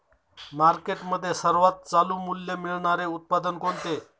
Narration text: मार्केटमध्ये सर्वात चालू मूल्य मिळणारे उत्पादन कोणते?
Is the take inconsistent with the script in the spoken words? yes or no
no